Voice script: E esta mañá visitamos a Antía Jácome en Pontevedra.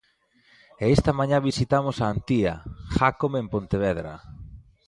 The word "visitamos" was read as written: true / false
true